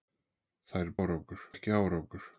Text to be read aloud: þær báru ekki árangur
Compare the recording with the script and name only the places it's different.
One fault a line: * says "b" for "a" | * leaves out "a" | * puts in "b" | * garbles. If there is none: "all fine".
* says "árangur" for "báru"